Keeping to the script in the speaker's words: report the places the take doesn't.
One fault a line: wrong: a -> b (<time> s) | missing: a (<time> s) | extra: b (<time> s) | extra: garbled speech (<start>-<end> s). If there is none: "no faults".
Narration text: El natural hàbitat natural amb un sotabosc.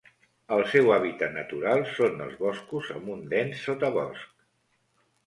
wrong: natural -> seu (0.7 s)
extra: són els boscos (1.9 s)
extra: dens (3.3 s)